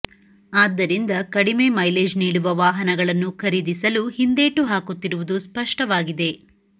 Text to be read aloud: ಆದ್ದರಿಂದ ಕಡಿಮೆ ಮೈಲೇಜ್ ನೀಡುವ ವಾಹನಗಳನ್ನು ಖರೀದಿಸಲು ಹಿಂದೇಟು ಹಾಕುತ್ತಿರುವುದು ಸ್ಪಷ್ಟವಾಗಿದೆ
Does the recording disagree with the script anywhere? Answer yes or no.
no